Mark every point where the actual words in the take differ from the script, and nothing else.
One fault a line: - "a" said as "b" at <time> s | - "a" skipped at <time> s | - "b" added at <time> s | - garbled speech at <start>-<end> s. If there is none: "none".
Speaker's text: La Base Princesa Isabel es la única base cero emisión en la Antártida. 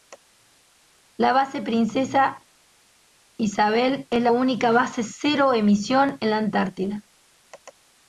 none